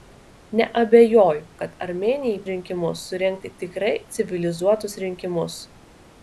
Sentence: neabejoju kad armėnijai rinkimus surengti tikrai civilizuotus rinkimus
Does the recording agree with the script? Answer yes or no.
yes